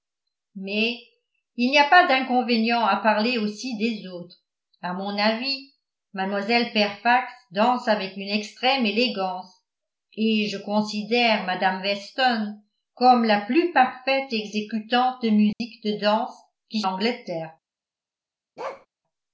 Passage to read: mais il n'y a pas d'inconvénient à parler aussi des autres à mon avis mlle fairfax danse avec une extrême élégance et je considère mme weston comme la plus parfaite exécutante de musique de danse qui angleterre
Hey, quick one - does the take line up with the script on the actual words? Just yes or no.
yes